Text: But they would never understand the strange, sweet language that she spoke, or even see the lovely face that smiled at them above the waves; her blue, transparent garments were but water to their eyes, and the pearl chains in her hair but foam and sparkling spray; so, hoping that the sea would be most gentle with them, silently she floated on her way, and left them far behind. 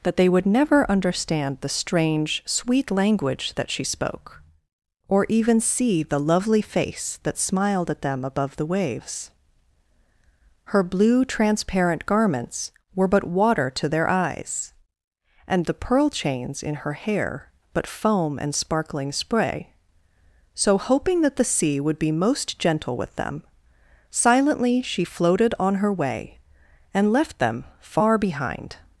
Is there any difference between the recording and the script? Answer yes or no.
yes